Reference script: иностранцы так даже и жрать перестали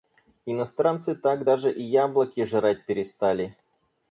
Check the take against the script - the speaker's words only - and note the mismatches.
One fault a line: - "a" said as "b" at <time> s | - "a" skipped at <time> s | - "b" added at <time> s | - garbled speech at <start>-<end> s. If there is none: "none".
- "яблоки" added at 1.8 s